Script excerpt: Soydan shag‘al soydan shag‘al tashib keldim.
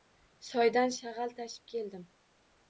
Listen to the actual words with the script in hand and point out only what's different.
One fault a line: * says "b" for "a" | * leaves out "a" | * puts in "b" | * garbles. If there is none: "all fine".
* leaves out "soydan shag‘al"